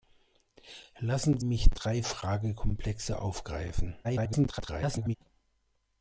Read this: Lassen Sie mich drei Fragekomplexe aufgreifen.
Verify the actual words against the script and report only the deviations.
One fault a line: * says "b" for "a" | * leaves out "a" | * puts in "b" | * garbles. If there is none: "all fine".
* leaves out "Sie"
* garbles